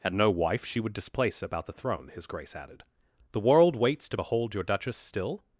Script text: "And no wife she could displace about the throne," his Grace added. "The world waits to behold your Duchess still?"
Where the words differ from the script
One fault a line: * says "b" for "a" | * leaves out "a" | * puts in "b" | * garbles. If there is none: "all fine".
* says "would" for "could"